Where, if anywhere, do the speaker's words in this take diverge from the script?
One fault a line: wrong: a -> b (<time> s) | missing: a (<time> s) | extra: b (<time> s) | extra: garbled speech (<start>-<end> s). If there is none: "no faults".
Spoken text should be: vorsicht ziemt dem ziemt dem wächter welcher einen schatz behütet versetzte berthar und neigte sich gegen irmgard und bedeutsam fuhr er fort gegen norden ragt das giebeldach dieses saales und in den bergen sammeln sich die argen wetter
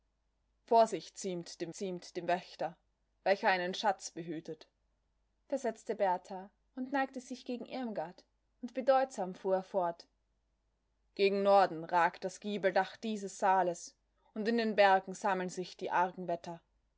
no faults